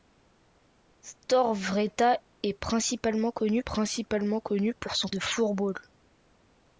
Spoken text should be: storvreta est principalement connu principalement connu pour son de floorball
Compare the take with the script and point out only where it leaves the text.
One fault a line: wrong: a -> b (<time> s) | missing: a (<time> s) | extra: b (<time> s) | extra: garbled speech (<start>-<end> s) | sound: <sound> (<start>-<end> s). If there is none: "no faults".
no faults